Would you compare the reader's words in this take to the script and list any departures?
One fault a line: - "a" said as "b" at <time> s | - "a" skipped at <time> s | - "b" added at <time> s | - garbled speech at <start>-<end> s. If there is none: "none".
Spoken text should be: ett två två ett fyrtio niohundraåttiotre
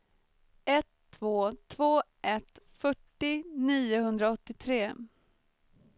none